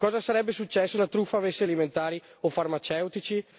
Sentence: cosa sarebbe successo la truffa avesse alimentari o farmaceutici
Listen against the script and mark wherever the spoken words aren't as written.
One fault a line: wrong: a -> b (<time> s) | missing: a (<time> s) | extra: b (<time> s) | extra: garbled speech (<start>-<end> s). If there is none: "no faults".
no faults